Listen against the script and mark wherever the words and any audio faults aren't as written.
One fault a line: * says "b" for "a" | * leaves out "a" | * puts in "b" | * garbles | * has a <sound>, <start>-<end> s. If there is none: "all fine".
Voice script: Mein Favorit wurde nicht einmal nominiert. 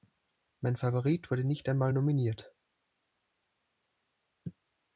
all fine